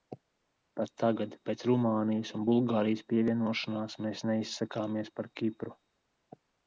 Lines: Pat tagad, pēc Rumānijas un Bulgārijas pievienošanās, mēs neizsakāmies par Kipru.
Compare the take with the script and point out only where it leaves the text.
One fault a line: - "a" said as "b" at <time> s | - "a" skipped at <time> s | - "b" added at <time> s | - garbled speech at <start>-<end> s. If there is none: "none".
none